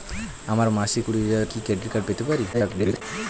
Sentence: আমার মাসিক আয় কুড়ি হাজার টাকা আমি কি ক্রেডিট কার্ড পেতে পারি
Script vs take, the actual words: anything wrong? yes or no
yes